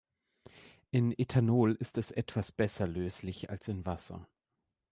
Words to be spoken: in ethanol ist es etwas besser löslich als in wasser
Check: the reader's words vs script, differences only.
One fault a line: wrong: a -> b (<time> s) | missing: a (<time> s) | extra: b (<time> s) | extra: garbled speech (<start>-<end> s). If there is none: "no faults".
no faults